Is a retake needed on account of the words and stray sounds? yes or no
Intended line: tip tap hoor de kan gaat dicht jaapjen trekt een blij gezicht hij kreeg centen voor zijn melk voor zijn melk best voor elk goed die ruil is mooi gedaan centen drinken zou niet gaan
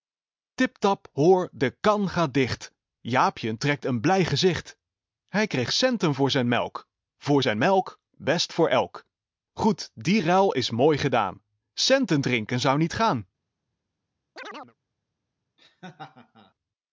yes